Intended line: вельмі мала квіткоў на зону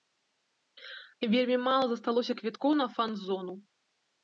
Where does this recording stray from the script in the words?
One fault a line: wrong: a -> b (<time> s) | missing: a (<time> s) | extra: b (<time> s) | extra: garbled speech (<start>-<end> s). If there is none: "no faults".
extra: засталося (1.9 s)
extra: фан (3.0 s)